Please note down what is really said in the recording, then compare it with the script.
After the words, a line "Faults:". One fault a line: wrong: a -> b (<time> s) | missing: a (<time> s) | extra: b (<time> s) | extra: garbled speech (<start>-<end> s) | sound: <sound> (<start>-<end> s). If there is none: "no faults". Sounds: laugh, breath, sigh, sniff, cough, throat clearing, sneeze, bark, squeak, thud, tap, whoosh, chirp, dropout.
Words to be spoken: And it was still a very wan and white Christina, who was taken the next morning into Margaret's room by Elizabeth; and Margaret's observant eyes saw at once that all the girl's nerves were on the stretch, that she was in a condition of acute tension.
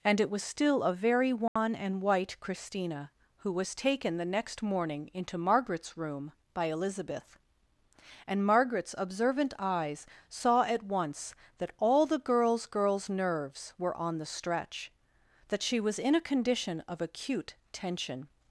And it was still a very wan and white Christina, who was taken the next morning into Margaret's room by Elizabeth; and Margaret's observant eyes saw at once that all the girl's girl's nerves were on the stretch, that she was in a condition of acute tension.
Faults:
sound: dropout (1.5-1.6 s)
extra: girl's (12.7 s)